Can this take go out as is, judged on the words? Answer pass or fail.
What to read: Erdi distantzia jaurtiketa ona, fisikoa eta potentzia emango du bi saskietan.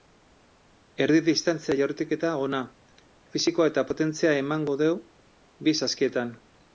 pass